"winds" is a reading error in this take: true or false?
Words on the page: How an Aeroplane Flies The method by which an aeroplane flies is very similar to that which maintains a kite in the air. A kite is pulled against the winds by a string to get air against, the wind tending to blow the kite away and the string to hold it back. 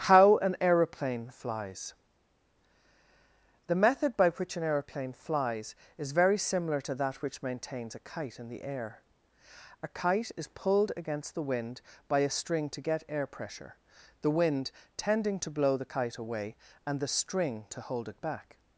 true